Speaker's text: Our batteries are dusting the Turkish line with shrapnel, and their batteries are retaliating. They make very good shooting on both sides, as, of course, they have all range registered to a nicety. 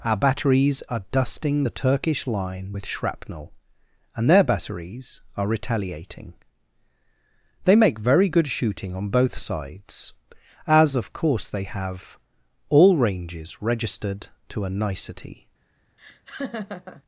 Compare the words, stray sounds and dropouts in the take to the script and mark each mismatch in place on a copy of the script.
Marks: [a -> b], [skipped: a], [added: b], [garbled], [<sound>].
Our batteries are dusting the Turkish line with shrapnel, and their batteries are retaliating. They make very good shooting on both sides, as, of course, they have all [range -> ranges] registered to a nicety. [laugh]